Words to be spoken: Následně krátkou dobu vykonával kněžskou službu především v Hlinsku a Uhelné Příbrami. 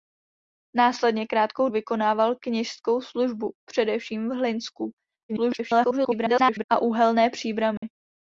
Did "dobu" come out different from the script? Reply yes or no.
yes